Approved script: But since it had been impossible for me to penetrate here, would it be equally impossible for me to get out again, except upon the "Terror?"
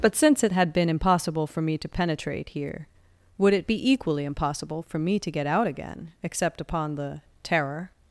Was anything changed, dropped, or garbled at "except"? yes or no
no